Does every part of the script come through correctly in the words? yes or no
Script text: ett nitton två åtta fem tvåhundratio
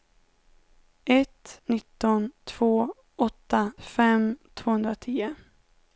yes